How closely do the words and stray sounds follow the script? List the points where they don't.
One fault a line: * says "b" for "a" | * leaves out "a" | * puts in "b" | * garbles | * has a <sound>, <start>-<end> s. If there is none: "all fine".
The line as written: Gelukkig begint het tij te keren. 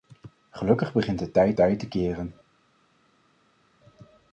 * puts in "tij"